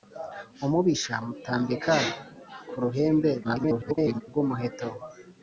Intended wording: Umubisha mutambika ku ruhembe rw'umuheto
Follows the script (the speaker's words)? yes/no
no